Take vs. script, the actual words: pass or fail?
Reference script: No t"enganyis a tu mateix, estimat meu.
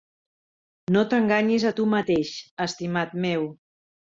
pass